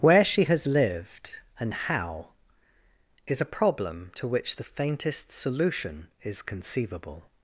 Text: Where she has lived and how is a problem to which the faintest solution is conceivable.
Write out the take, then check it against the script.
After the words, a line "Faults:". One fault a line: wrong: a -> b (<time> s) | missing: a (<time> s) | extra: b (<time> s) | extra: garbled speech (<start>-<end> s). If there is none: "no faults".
Where she has lived and how is a problem to which the faintest solution is conceivable.
Faults:
no faults